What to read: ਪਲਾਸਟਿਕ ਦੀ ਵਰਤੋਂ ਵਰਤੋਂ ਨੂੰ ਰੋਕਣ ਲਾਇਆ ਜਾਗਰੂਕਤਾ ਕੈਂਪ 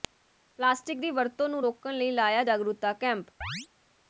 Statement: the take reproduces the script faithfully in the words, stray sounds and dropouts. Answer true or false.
false